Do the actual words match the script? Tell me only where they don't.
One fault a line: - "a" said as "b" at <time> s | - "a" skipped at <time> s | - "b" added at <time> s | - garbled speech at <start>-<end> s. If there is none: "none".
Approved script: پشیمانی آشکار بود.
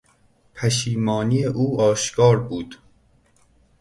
- "او" added at 1.4 s